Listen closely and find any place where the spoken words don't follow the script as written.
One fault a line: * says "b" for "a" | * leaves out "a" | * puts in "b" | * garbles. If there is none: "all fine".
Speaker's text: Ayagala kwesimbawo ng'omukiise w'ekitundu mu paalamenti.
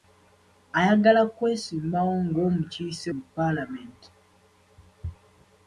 * leaves out "w'ekitundu"